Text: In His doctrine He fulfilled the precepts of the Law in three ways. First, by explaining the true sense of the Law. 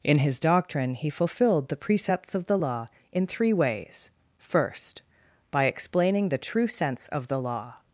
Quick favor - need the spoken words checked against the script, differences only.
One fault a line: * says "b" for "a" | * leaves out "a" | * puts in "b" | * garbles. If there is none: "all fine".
all fine